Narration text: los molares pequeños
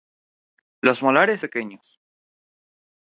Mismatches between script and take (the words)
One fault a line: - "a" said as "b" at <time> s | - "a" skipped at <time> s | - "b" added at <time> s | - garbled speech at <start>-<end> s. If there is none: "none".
none